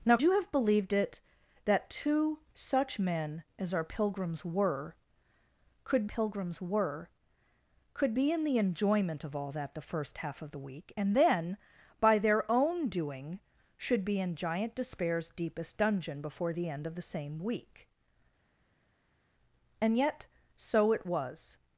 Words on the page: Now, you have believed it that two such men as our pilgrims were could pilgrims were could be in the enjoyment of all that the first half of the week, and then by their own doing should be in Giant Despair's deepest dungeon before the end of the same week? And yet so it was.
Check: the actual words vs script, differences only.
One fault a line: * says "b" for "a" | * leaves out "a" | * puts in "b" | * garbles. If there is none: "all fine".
all fine